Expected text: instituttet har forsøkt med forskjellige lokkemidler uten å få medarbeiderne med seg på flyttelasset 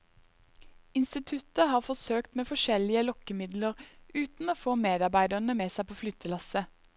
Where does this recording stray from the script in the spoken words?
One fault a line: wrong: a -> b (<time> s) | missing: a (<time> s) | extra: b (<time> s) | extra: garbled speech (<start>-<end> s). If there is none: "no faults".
no faults